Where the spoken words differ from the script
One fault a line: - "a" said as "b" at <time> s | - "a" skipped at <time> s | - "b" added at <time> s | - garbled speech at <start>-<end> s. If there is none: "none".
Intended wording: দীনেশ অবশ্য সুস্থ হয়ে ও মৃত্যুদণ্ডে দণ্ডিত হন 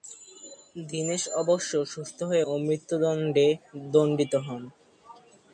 none